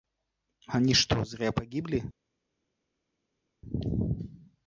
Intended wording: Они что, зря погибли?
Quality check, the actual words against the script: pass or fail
pass